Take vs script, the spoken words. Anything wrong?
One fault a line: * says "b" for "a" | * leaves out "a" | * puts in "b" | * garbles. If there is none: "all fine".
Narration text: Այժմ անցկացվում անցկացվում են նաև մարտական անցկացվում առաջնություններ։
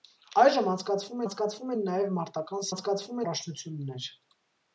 all fine